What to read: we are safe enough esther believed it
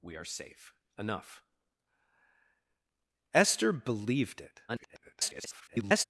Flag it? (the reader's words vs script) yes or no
yes